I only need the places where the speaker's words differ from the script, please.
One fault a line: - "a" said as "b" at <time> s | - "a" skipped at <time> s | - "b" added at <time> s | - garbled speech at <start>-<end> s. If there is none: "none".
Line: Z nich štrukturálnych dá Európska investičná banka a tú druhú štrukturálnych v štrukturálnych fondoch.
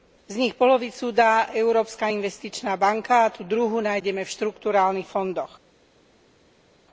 - "štrukturálnych" said as "polovicu" at 0.5 s
- "štrukturálnych" said as "nájdeme" at 3.8 s